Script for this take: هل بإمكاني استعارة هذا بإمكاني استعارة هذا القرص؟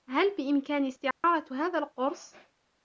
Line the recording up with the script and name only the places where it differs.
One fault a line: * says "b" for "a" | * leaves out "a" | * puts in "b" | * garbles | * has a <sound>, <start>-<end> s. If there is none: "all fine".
* has a dropout, 1.1-1.2 s
* leaves out "بإمكاني استعارة هذا"